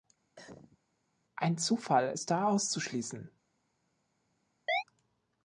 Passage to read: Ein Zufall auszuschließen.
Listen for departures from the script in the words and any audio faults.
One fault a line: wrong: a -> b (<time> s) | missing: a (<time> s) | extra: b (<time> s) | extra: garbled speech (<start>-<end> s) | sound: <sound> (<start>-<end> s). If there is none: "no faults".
sound: cough (0.4-0.8 s)
extra: ist da (2.1 s)
sound: chirp (4.7-4.8 s)